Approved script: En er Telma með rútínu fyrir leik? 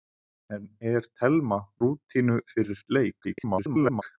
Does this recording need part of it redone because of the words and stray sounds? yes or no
yes